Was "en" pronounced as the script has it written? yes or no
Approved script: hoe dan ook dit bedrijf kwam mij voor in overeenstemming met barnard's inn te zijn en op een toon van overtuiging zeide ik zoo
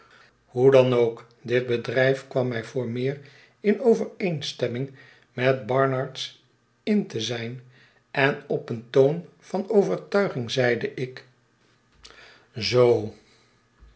yes